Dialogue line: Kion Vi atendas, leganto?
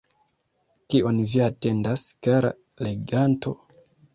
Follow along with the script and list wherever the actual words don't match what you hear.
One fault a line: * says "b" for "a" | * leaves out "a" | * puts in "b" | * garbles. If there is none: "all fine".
* puts in "kara"